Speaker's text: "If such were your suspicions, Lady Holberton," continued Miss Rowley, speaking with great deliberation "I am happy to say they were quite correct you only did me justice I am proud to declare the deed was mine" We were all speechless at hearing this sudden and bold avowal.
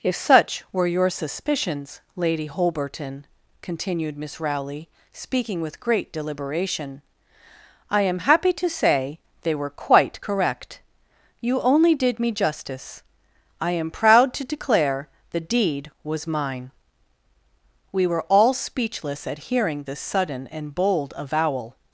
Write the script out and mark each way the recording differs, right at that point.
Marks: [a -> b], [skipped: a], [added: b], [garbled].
"If such were your suspicions, Lady Holberton," continued Miss Rowley, speaking with great deliberation "I am happy to say they were quite correct you only did me justice I am proud to declare the deed was mine" We were all speechless at hearing this sudden and bold avowal.